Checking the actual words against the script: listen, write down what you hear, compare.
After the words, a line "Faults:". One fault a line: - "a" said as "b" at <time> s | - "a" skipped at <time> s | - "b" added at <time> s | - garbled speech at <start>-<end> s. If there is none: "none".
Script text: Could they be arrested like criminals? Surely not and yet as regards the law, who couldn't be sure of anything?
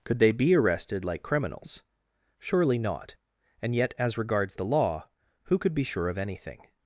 Could they be arrested like criminals? Surely not and yet as regards the law, who could be sure of anything?
Faults:
- "couldn't" said as "could" at 5.6 s